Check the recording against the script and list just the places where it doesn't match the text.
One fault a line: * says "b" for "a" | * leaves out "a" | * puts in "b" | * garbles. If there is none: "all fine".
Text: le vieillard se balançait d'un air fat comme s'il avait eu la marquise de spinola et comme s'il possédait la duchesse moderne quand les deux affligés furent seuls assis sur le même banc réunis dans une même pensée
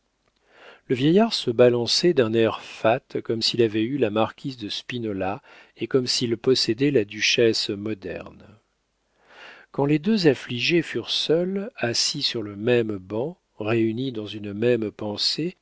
all fine